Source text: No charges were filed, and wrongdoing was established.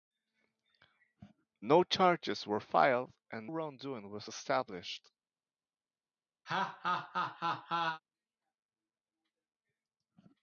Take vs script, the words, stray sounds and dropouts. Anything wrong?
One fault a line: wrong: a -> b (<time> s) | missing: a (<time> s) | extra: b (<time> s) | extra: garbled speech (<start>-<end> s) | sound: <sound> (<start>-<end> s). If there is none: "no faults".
sound: laugh (6.5-8.0 s)